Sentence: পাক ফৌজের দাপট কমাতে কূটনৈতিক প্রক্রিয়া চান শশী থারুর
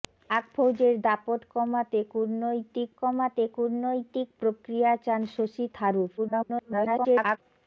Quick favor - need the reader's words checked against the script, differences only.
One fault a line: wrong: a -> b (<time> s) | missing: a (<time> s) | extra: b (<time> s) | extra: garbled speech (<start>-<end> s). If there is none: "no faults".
extra: কমাতে কূটনৈতিক (3.0 s)
extra: garbled speech (6.2-7.4 s)